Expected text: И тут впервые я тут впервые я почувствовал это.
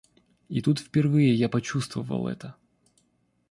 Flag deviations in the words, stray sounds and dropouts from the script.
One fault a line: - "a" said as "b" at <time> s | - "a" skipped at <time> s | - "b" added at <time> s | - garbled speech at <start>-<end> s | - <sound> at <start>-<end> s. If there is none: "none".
- "тут впервые я" skipped at 1.5 s